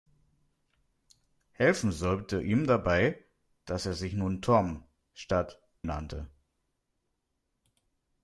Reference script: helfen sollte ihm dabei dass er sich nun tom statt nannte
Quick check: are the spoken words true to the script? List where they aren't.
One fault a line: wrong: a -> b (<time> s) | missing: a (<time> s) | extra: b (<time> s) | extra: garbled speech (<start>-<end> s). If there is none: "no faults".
no faults